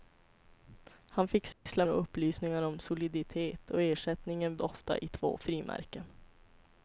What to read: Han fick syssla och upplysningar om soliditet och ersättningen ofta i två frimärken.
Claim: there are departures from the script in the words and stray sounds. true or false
true